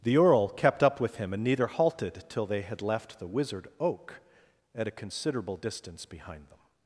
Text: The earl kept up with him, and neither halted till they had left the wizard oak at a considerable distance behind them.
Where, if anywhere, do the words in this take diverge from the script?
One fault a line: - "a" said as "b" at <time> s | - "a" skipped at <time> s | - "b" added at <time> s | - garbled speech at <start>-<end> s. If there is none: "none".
none